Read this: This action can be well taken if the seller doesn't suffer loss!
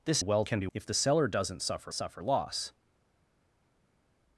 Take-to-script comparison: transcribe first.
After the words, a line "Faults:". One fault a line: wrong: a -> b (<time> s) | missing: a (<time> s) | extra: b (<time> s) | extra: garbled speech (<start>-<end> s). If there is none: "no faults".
This well can be if the seller doesn't suffer suffer loss!
Faults:
wrong: action -> well (0.2 s)
missing: well taken (0.7 s)
extra: suffer (1.9 s)